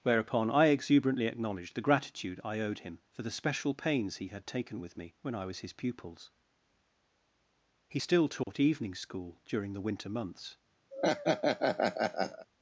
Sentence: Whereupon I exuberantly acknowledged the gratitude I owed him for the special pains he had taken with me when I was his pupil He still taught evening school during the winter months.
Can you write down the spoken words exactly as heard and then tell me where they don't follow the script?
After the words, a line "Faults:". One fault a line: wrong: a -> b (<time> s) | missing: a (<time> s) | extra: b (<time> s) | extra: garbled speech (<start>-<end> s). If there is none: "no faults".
Whereupon I exuberantly acknowledged the gratitude I owed him for the special pains he had taken with me when I was his pupils He still taught evening school during the winter months.
Faults:
wrong: pupil -> pupils (5.7 s)